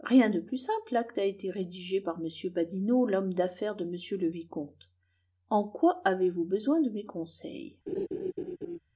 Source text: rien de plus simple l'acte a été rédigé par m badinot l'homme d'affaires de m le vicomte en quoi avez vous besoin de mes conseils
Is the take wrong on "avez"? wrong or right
right